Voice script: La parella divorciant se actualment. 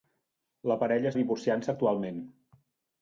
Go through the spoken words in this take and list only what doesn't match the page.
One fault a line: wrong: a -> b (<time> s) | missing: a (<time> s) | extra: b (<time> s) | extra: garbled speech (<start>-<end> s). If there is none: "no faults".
no faults